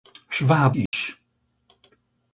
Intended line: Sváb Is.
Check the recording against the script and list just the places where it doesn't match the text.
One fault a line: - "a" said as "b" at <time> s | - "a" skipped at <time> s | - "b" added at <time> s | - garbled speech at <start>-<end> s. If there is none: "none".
none